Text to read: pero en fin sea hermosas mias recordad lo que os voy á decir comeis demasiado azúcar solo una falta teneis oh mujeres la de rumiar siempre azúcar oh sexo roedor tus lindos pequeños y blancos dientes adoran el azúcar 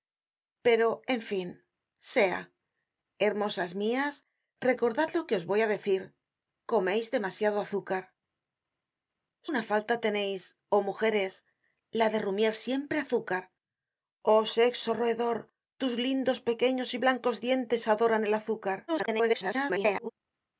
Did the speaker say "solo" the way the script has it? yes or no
no